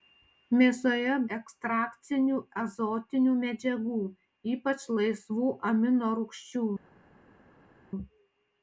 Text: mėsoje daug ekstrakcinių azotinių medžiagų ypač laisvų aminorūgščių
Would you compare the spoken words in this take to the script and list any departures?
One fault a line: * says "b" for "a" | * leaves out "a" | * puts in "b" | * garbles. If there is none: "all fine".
* leaves out "daug"